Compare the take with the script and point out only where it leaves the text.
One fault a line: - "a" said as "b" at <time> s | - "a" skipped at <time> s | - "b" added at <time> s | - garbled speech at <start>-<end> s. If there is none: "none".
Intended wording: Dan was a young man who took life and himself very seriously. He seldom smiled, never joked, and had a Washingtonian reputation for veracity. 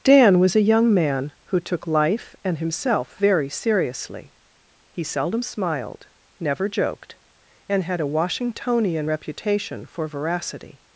none